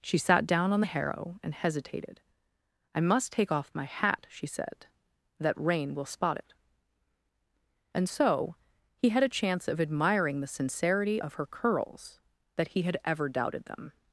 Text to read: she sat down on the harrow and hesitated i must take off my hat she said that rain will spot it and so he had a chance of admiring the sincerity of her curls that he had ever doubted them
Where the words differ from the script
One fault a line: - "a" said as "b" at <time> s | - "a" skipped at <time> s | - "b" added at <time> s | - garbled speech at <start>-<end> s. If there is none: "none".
none